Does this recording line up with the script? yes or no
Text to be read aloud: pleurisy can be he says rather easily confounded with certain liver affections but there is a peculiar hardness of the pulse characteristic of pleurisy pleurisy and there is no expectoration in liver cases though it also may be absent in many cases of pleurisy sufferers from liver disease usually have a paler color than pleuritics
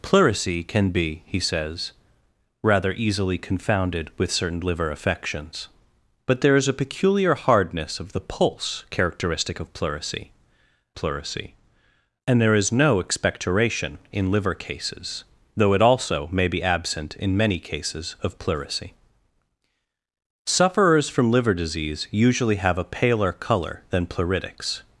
yes